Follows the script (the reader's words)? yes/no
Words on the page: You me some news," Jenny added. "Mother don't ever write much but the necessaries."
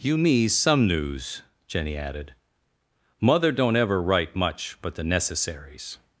yes